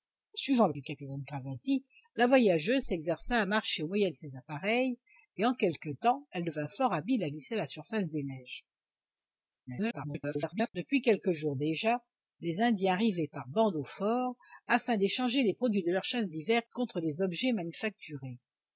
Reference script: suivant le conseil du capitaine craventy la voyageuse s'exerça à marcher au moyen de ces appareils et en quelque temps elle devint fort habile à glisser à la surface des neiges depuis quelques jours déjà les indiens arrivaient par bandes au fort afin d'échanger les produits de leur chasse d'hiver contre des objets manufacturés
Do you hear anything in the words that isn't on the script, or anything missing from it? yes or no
yes